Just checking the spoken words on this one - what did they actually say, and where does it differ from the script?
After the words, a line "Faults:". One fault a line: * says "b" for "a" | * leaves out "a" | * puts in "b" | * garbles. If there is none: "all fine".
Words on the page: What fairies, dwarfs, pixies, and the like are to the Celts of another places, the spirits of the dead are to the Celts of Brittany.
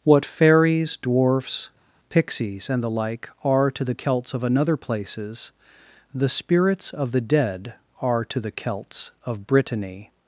What fairies, dwarfs, pixies, and the like are to the Celts of another places, the spirits of the dead are to the Celts of Brittany.
Faults:
all fine